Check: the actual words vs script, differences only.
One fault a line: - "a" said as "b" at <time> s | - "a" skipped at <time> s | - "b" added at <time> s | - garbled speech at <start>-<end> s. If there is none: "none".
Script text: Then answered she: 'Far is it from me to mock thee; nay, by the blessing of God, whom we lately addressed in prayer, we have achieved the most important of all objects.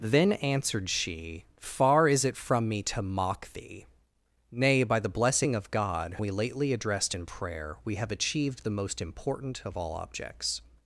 - "whom" skipped at 6.2 s